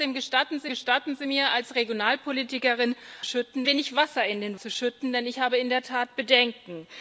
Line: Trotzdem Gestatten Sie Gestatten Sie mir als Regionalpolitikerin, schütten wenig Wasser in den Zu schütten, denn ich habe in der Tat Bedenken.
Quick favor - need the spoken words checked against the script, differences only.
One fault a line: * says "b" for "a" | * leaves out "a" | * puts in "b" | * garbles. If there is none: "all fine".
all fine